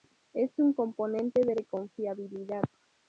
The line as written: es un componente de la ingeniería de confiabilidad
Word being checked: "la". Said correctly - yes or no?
no